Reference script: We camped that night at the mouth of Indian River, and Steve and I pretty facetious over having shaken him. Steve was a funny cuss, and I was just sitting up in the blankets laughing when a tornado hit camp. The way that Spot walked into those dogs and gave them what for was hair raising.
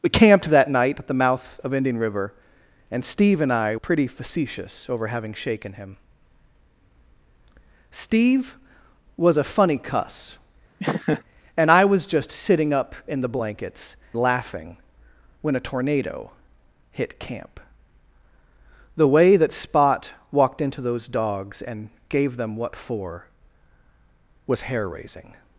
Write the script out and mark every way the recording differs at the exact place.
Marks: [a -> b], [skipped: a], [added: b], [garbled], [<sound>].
We camped that night at the mouth of Indian River, and Steve and I pretty facetious over having shaken him. Steve was a funny cuss, [laugh] and I was just sitting up in the blankets laughing when a tornado hit camp. The way that Spot walked into those dogs and gave them what for was hair raising.